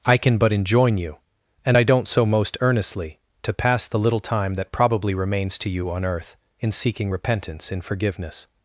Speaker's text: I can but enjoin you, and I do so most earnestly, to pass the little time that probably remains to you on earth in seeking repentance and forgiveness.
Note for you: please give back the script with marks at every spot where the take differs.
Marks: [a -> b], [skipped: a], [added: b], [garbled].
I can but enjoin you, and I [do -> don't] so most earnestly, to pass the little time that probably remains to you on earth in seeking repentance [and -> in] forgiveness.